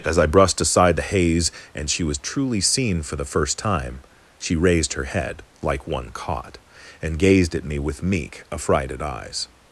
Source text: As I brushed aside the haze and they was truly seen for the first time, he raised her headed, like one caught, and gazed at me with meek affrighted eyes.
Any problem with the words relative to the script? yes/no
yes